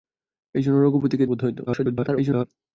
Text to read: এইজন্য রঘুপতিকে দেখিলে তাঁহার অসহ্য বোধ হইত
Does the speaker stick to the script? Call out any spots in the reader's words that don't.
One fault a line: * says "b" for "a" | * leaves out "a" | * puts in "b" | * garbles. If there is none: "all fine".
* leaves out "দেখিলে তাঁহার অসহ্য"
* garbles